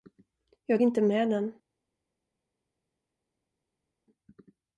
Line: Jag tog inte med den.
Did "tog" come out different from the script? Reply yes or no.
yes